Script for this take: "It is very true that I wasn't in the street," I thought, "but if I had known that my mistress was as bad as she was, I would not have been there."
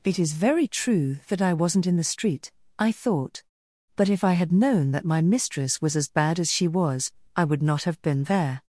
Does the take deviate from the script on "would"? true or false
false